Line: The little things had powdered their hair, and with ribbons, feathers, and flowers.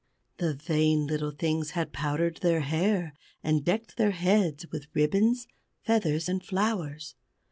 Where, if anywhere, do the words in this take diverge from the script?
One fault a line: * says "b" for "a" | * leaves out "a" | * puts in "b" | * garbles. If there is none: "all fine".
* puts in "vain"
* puts in "decked their heads"